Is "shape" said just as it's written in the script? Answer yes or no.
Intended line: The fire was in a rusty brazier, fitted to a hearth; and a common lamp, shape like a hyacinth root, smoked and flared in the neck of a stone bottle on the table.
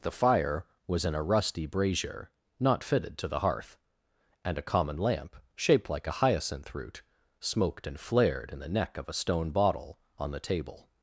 no